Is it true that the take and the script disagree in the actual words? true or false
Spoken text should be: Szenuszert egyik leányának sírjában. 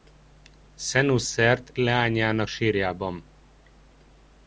true